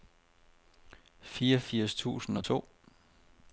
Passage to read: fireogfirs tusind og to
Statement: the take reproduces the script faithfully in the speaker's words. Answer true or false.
true